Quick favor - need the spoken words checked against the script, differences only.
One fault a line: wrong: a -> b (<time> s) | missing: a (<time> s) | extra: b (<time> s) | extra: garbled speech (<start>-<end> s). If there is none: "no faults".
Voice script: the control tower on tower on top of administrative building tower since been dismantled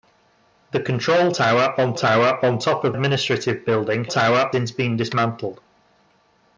no faults